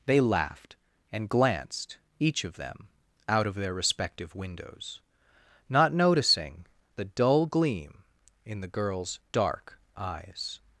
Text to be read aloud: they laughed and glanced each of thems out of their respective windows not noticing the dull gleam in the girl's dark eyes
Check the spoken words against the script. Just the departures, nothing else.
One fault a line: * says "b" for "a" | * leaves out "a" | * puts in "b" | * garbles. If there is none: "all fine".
* says "them" for "thems"